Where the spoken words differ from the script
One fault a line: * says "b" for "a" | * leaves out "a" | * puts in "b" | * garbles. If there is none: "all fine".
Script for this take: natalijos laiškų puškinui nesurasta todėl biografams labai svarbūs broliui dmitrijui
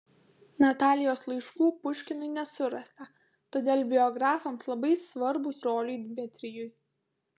all fine